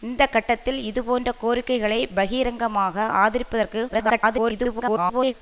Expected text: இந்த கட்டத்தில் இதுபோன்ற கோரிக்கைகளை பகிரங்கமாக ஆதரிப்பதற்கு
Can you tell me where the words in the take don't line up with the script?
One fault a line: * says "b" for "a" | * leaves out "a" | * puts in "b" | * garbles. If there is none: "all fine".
* garbles